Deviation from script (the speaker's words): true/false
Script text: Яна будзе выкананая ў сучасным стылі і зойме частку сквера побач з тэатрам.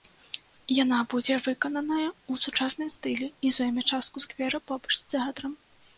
false